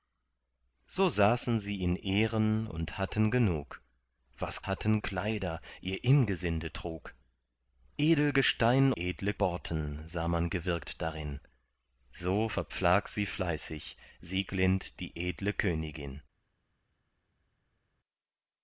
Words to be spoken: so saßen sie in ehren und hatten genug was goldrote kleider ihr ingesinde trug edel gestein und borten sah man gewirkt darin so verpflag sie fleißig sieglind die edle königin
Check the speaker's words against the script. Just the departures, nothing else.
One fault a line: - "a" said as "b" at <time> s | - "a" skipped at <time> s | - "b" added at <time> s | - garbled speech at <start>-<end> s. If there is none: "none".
- "goldrote" said as "hatten" at 4.7 s
- "und" said as "edle" at 9.0 s